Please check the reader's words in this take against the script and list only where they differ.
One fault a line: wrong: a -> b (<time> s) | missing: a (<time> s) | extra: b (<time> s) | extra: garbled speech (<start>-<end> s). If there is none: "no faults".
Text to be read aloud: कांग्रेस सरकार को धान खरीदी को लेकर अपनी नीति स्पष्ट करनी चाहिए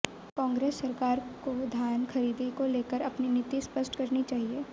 no faults